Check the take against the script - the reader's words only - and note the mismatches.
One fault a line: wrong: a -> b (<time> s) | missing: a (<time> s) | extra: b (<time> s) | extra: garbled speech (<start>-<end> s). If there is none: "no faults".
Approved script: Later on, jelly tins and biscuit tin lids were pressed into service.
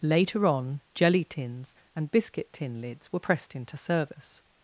no faults